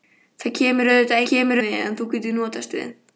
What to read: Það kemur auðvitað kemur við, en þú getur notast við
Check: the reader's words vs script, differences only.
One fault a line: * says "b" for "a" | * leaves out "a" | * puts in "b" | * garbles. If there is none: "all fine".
all fine